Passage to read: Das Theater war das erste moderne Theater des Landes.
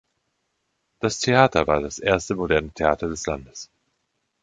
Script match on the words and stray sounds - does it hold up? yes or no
yes